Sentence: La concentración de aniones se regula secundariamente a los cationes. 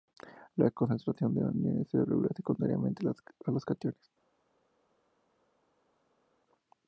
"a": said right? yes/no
yes